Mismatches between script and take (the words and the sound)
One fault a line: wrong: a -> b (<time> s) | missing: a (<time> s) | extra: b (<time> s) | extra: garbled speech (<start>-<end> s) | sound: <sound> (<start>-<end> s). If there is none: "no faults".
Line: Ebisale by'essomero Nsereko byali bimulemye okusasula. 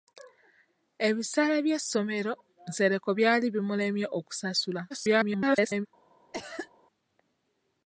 extra: garbled speech (4.9-5.9 s)
sound: cough (6.3-6.7 s)